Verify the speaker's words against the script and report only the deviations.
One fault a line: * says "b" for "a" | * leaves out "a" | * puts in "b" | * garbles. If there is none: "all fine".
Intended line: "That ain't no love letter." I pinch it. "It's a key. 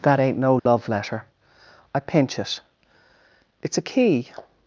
all fine